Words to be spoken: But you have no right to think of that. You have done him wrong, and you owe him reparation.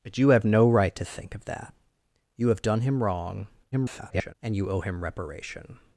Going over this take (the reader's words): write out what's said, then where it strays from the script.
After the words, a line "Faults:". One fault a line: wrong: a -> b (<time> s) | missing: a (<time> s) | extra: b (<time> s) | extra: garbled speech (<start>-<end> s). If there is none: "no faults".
But you have no right to think of that. You have done him wrong, [garbled] and you owe him reparation.
Faults:
extra: garbled speech (3.7-4.3 s)